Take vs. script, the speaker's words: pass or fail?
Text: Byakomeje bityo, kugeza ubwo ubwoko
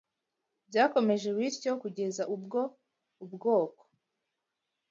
pass